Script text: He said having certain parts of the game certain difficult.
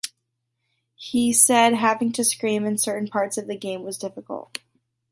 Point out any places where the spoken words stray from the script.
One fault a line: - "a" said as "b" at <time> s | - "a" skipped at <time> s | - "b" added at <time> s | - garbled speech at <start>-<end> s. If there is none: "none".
- "to scream in" added at 2.1 s
- "certain" said as "was" at 3.8 s